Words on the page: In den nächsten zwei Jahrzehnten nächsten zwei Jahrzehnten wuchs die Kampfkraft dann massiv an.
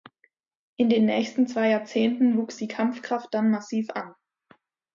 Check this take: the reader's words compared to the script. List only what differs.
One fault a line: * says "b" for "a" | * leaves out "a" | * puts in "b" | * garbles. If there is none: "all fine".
* leaves out "nächsten zwei Jahrzehnten"